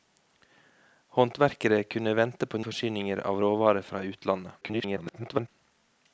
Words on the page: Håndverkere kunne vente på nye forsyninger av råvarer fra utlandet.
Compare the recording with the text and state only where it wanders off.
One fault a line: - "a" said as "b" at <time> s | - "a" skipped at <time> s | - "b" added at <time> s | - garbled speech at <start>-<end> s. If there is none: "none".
- "nye" skipped at 2.6 s
- garbled speech at 4.6-5.5 s